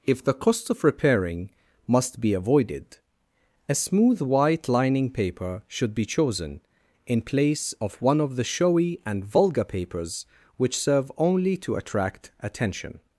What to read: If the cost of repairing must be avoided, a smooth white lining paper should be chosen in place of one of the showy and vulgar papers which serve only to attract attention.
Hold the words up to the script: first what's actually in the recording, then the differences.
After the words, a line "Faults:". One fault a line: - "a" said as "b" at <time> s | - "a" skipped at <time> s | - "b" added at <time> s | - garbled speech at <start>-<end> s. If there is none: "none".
If the cost of repairing must be avoided, a smooth white lining paper should be chosen in place of one of the showy and vulgar papers which serve only to attract attention.
Faults:
none